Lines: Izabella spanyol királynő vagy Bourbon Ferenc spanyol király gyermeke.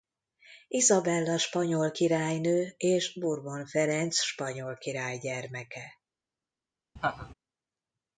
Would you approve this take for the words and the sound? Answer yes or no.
no